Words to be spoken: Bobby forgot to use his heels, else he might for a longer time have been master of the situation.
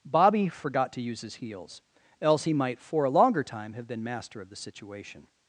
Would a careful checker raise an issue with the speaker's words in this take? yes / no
no